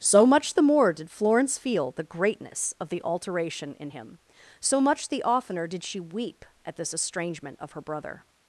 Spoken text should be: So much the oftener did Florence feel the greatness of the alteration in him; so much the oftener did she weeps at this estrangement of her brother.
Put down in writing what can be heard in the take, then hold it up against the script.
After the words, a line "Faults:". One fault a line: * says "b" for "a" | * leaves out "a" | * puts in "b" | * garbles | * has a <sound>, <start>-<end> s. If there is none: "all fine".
So much the more did Florence feel the greatness of the alteration in him; so much the oftener did she weep at this estrangement of her brother.
Faults:
* says "more" for "oftener"
* says "weep" for "weeps"